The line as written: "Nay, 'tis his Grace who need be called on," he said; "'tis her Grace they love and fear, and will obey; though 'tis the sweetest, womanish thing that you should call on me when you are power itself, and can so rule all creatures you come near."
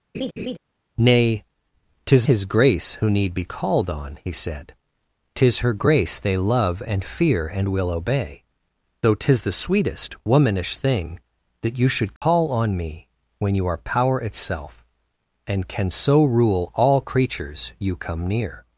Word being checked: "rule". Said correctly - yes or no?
yes